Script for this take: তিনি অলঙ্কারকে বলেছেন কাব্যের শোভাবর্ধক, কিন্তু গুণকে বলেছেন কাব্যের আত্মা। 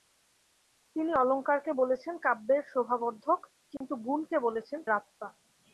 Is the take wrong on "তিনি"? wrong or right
right